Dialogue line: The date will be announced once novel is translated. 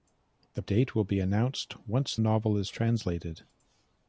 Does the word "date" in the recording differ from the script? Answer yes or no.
no